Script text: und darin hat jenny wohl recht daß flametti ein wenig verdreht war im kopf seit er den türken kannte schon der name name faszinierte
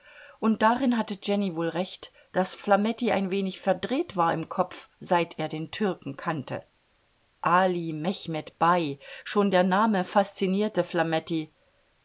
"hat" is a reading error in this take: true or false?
true